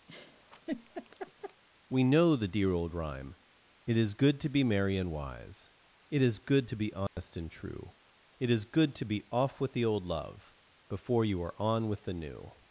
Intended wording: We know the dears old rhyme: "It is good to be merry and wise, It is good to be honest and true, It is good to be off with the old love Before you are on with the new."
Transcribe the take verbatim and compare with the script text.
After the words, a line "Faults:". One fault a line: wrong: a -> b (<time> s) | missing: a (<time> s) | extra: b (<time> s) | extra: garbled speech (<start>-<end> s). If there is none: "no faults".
We know the dear old rhyme: "It is good to be merry and wise, It is good to be honest and true, It is good to be off with the old love Before you are on with the new."
Faults:
wrong: dears -> dear (2.5 s)